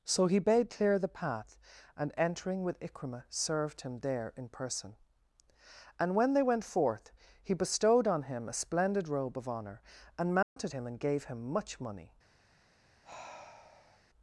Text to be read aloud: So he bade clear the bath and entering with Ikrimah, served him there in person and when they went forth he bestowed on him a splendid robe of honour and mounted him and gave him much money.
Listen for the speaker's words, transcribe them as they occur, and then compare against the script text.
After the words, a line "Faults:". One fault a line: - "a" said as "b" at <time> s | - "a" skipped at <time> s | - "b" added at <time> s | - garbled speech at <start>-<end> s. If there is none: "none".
So he bade clear the path and entering with Ikrimah, served him there in person and when they went forth he bestowed on him a splendid robe of honour and mounted him and gave him much money.
Faults:
- "bath" said as "path" at 1.1 s